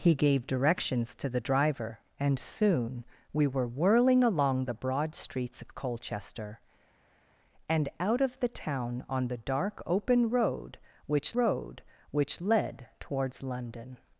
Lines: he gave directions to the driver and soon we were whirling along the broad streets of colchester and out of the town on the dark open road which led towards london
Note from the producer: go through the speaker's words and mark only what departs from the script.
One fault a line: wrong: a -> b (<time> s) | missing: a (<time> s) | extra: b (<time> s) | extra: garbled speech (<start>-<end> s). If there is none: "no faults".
extra: road which (11.3 s)